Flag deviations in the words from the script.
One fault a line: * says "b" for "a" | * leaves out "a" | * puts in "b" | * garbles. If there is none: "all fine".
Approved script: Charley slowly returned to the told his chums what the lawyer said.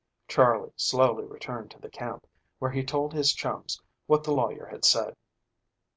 * puts in "camp where he"
* puts in "had"